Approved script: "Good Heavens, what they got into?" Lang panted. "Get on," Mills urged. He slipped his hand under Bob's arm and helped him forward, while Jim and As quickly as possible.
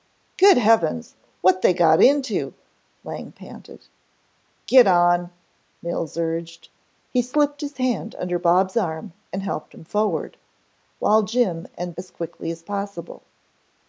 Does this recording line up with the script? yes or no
yes